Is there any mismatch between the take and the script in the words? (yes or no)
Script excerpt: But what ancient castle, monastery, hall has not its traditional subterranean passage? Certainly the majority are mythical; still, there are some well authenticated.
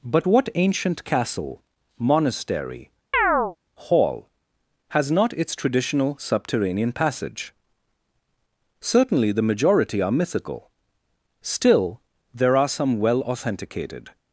no